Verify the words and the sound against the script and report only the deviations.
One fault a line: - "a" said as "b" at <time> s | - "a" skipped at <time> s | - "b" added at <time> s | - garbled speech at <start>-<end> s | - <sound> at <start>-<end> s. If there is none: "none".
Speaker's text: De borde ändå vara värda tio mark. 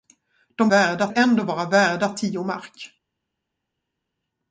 - "borde" said as "värda" at 0.7 s